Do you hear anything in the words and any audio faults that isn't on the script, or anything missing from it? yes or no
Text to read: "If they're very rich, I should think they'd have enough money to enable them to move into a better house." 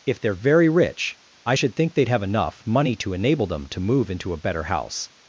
no